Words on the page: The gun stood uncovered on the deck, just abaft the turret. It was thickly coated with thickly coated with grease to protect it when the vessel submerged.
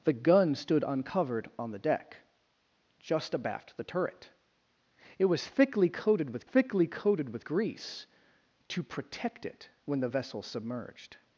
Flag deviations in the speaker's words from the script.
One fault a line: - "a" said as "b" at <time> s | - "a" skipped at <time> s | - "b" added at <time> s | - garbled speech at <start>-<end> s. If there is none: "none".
none